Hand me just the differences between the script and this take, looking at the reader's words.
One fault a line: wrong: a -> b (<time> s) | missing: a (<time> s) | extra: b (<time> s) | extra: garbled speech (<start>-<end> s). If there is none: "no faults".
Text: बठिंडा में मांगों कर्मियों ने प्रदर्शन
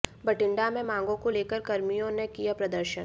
extra: को लेकर (1.2 s)
extra: किया (2.3 s)